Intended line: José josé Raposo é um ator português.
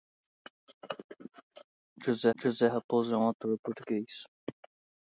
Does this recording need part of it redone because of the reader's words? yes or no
no